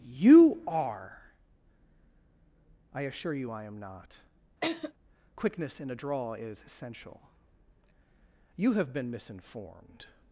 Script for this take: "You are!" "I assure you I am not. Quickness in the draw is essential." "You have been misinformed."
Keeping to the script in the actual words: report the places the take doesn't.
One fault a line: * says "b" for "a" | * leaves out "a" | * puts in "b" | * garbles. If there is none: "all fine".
* says "a" for "the"